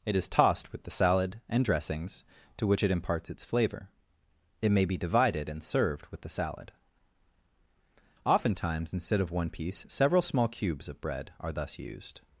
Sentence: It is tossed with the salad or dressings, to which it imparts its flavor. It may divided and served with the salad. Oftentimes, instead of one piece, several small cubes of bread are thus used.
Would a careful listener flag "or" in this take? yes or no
yes